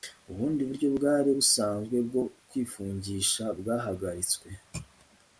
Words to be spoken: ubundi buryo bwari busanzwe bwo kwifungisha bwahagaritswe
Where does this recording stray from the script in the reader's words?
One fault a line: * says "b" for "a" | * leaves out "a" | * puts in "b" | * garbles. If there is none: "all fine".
all fine